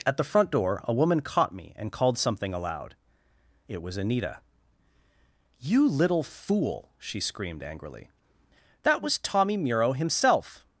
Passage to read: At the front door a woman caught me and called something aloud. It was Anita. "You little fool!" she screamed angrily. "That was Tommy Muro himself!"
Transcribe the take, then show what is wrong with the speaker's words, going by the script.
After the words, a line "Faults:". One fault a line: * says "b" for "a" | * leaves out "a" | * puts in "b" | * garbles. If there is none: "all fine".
At the front door a woman caught me and called something aloud. It was Anita. "You little fool!" she screamed angrily. "That was Tommy Muro himself!"
Faults:
all fine